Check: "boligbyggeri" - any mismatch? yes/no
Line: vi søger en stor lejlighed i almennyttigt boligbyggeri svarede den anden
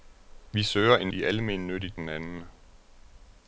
yes